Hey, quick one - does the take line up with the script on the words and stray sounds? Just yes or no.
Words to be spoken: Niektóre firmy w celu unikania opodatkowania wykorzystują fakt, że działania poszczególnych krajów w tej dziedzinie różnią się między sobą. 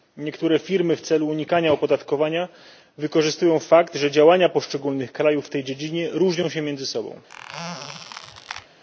no